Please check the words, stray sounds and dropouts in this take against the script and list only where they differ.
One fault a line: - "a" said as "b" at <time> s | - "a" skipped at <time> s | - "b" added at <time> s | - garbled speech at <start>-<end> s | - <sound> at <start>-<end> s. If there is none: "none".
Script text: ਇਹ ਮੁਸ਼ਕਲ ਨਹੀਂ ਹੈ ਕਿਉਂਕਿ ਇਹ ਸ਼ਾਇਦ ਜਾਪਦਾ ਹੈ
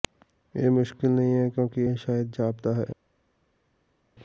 none